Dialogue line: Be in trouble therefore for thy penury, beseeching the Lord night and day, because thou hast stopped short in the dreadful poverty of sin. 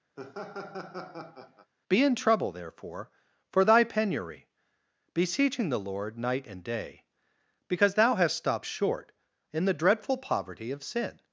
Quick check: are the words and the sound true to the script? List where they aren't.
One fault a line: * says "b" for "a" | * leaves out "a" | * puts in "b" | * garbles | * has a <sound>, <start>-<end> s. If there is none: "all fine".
* has a laugh, 0.2-1.7 s